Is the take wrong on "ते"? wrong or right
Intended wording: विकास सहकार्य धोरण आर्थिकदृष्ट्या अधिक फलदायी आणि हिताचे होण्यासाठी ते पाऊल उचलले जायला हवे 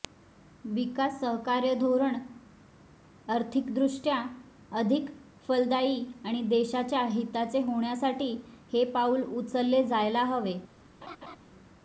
wrong